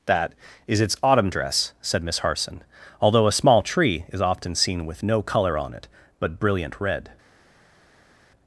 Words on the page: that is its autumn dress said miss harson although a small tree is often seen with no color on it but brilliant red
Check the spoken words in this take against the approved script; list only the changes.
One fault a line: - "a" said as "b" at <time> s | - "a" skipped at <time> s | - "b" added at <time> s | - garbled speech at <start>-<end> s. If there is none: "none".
none